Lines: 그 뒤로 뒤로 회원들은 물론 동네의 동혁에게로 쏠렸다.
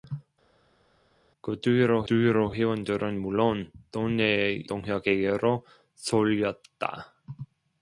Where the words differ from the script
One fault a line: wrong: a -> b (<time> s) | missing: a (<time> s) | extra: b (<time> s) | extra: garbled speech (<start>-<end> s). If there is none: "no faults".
no faults